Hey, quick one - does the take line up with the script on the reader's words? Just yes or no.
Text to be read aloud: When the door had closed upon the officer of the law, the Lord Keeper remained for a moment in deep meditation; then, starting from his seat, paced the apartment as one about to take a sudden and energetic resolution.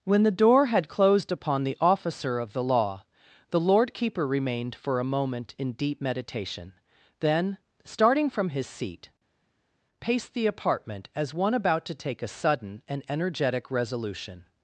yes